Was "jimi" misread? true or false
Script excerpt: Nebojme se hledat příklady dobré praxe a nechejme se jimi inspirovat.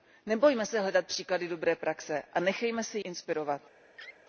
true